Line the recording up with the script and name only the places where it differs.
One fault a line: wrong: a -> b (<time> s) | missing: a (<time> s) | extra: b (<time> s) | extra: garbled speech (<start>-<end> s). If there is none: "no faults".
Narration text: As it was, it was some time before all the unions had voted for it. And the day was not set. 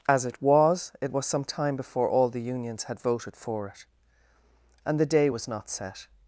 no faults